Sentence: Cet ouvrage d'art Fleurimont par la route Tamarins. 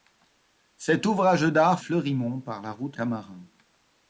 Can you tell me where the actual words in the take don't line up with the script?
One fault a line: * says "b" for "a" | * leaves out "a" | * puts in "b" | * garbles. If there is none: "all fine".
all fine